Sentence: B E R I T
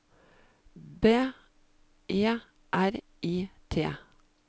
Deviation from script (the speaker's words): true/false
false